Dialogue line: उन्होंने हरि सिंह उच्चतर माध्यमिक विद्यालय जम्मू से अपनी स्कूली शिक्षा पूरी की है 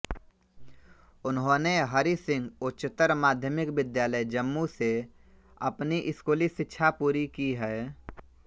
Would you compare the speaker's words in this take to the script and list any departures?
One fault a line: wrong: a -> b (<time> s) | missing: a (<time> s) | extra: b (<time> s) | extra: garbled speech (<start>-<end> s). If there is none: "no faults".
no faults